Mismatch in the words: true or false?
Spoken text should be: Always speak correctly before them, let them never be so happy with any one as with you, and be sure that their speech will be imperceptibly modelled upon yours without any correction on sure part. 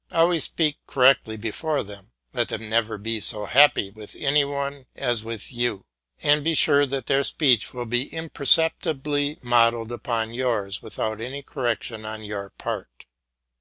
true